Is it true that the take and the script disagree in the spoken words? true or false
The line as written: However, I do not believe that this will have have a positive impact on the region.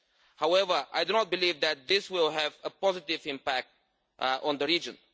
true